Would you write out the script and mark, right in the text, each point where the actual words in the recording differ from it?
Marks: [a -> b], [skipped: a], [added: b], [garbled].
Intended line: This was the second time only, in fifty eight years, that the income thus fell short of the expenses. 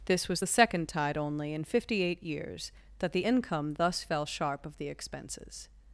This was the second [time -> tide] only, in fifty eight years, that the income thus fell [short -> sharp] of the expenses.